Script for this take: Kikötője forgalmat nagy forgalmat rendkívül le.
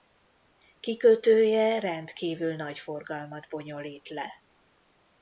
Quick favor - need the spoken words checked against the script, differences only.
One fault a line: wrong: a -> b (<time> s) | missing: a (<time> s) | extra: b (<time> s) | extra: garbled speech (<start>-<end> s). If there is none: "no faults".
wrong: forgalmat -> rendkívül (1.8 s)
wrong: rendkívül -> bonyolít (3.5 s)